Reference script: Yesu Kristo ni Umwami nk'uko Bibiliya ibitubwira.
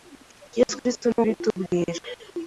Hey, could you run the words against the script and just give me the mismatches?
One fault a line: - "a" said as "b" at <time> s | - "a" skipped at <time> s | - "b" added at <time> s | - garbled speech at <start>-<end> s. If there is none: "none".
- "Umwami nk'uko Bibiliya" skipped at 1.2 s